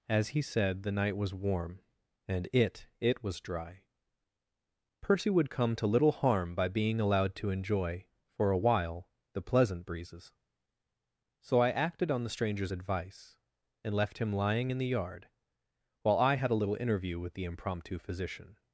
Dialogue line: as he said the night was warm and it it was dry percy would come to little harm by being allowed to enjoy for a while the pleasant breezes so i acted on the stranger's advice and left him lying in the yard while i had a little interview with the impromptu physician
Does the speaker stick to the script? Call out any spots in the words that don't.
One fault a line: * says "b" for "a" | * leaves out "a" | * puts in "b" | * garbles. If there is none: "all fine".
all fine